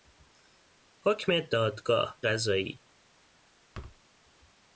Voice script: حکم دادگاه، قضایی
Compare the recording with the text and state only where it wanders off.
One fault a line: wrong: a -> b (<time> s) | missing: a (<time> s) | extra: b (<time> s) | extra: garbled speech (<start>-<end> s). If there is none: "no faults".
no faults